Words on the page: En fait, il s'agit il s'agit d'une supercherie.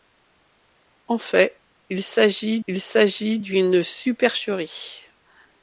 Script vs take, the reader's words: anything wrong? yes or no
no